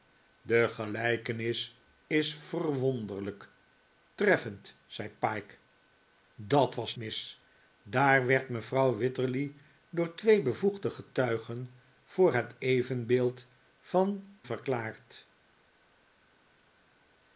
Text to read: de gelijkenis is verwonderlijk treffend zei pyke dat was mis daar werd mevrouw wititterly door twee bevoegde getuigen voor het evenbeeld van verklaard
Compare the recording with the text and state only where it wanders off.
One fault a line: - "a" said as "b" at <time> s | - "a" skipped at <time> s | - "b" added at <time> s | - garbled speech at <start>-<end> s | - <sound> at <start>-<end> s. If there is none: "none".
none